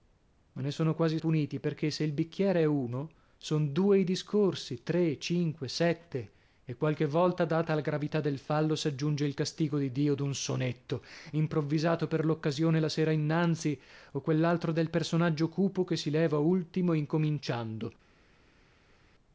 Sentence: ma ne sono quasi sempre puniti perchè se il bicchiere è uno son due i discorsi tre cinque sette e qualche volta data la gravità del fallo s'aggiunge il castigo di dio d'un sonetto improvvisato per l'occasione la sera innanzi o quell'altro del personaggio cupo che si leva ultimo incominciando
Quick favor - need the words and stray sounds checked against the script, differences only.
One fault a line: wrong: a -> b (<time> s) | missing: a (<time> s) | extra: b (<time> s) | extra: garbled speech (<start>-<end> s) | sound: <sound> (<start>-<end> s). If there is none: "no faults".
missing: sempre (1.2 s)